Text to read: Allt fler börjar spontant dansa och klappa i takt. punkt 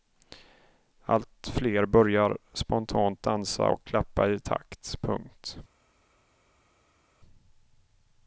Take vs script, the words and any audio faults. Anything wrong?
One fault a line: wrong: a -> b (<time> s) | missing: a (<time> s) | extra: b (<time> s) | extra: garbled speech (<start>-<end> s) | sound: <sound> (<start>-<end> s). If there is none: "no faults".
no faults